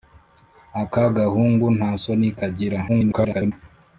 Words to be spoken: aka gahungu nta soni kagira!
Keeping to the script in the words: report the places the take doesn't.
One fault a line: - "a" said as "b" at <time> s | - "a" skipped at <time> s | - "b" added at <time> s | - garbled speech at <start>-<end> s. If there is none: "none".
- garbled speech at 2.9-3.5 s